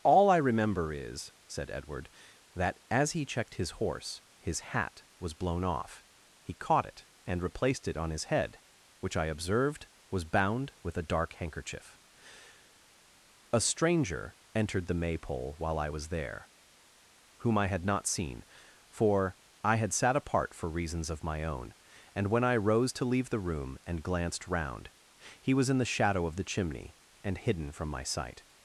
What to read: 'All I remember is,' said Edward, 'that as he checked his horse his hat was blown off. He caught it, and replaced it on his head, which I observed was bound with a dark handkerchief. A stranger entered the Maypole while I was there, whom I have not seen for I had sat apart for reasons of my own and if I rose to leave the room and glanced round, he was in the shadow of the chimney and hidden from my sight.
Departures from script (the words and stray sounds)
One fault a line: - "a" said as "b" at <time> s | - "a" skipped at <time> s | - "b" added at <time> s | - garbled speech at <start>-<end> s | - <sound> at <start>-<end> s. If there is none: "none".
- "have" said as "had" at 17.7 s
- "if" said as "when" at 22.3 s